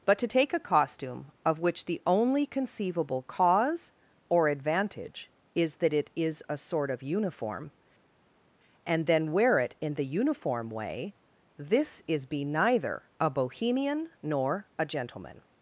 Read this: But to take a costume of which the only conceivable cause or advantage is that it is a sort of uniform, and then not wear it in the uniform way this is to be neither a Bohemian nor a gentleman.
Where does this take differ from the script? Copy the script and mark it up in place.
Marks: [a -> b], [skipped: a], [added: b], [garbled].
But to take a costume of which the only conceivable cause or advantage is that it is a sort of uniform, and then [skipped: not] wear it in the uniform way this is [skipped: to] be neither a Bohemian nor a gentleman.